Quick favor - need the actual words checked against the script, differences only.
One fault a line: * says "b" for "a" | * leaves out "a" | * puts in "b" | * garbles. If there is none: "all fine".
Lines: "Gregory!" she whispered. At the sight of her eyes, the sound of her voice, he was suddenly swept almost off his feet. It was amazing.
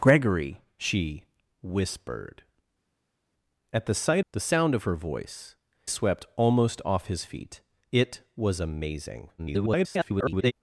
* leaves out "of her eyes"
* leaves out "he was suddenly"
* garbles